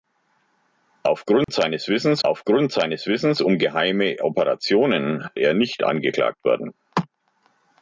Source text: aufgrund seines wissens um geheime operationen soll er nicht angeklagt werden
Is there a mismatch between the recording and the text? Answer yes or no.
yes